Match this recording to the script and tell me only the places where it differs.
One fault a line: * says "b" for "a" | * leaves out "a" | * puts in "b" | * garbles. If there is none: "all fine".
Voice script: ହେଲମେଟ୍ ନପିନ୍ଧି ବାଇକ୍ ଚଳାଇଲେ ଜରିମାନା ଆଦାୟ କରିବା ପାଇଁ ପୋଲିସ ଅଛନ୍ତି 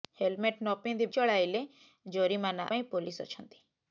* leaves out "ବାଇକ୍"
* leaves out "ଆଦାୟ କରିବା"